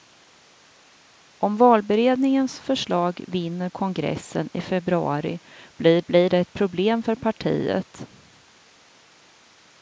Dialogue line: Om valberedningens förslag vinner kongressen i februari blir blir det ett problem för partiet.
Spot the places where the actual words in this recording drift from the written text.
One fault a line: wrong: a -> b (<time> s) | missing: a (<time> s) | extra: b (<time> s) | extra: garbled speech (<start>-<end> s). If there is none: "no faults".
no faults